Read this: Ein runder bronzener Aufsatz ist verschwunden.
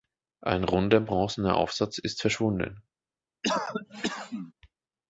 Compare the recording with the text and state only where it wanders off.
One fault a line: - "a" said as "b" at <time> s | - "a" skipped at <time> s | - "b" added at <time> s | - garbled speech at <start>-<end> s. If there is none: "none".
none